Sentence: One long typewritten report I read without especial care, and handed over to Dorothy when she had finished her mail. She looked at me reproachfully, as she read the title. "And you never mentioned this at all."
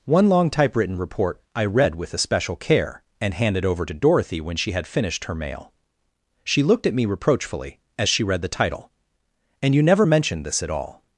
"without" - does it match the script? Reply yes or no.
no